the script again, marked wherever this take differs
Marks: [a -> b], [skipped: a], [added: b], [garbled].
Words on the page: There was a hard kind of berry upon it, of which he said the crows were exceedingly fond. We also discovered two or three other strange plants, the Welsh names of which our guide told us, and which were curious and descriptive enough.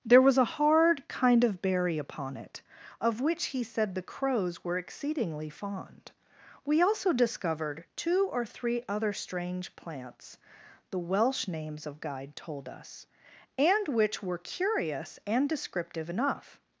There was a hard kind of berry upon it, of which he said the crows were exceedingly fond. We also discovered two or three other strange plants, the Welsh names of [skipped: which our] guide told us, and which were curious and descriptive enough.